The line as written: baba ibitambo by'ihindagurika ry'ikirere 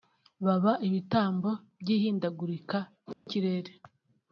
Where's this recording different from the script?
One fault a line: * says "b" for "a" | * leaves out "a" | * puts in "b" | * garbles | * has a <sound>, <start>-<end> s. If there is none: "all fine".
* has a dropout, 3.1-3.3 s